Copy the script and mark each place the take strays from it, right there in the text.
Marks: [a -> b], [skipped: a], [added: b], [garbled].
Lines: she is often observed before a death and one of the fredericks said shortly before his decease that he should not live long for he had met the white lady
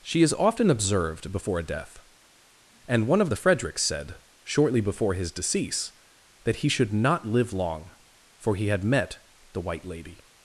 she is often observed before a death and one of the fredericks said shortly before his decease that he should not live long for he had met the white lady